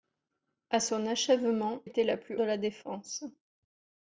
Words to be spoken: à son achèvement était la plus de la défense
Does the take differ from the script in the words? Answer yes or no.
no